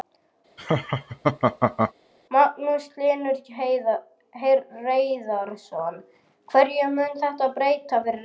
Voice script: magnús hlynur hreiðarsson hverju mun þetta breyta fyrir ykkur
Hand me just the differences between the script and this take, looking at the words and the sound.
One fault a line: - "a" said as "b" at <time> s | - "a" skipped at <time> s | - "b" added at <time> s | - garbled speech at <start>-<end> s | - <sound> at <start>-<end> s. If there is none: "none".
- laugh at 0.6-1.9 s